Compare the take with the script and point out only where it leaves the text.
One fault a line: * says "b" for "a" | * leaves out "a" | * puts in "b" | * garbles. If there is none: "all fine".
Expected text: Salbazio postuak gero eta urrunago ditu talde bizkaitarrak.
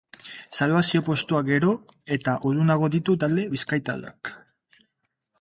all fine